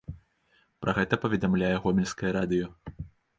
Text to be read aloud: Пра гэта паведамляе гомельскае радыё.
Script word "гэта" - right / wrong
right